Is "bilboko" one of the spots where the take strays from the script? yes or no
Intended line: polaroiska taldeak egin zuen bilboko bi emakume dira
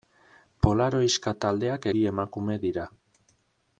yes